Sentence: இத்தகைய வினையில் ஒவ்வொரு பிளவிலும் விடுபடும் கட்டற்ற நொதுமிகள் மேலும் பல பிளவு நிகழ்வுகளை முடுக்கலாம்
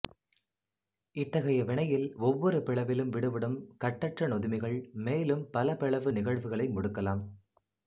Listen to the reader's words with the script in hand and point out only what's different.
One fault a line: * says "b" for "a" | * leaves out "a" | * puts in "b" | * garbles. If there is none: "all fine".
all fine